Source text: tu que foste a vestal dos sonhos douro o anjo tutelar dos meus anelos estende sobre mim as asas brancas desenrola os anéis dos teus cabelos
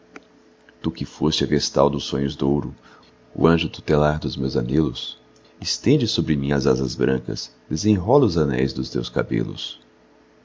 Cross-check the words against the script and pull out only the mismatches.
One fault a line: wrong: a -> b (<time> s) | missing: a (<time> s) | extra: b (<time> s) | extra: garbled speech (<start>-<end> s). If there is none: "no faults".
no faults